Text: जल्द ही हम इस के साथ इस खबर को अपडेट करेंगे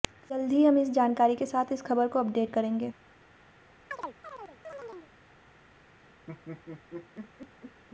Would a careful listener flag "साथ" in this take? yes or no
no